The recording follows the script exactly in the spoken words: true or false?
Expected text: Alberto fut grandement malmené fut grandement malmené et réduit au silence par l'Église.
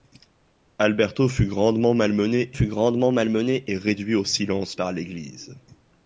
true